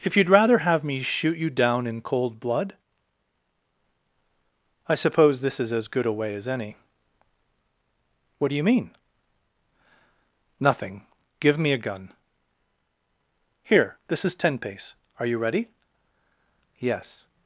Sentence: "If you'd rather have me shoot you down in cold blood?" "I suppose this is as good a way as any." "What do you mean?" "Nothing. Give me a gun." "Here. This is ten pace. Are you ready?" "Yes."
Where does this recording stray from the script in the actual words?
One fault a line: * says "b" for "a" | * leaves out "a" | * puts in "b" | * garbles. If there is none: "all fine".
all fine